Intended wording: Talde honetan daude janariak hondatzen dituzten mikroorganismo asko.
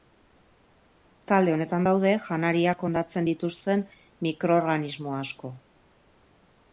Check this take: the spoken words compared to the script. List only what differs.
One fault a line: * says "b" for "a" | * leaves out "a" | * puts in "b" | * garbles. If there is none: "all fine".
all fine